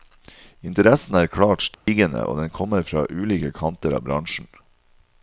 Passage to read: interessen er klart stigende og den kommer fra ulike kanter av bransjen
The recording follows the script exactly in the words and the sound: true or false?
false